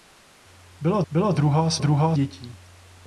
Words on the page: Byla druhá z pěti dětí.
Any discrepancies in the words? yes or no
yes